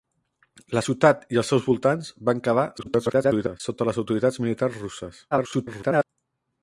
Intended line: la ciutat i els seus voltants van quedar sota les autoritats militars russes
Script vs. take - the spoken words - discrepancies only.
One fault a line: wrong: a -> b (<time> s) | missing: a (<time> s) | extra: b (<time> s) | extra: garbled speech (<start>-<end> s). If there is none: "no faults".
extra: garbled speech (2.8-3.6 s)
extra: garbled speech (5.3-6.0 s)